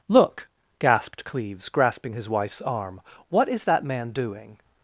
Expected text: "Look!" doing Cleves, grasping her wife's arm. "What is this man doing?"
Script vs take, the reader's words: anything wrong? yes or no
yes